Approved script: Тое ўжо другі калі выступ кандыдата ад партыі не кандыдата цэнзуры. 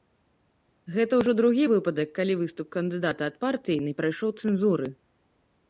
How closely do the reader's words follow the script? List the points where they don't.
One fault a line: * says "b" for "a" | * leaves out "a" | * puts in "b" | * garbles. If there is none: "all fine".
* says "Гэта" for "Тое"
* puts in "выпадак"
* says "прайшоў" for "кандыдата"